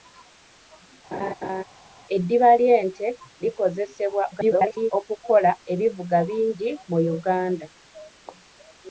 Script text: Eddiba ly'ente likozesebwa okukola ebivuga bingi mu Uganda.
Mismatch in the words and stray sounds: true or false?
true